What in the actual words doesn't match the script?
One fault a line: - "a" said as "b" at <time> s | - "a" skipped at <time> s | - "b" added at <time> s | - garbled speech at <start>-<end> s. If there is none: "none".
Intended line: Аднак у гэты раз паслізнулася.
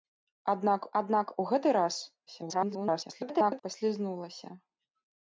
- "аднак" added at 1.0 s
- garbled speech at 2.3-3.6 s